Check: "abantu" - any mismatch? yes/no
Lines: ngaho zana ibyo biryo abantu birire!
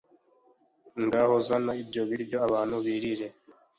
no